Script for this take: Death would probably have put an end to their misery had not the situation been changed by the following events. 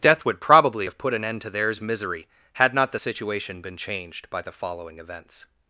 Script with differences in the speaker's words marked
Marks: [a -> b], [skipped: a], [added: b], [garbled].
Death would probably have put an end to [their -> theirs] misery had not the situation been changed by the following events.